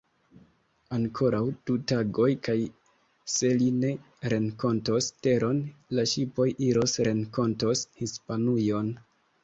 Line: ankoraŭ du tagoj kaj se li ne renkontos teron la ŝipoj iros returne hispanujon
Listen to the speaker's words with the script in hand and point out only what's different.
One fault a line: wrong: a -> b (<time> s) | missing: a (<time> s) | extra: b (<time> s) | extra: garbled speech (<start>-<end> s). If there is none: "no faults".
wrong: returne -> renkontos (7.1 s)